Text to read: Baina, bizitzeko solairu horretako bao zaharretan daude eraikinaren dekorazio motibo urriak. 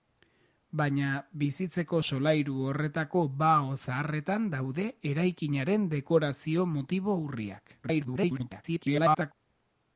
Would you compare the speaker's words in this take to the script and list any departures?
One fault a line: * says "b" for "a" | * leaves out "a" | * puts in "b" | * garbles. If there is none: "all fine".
* garbles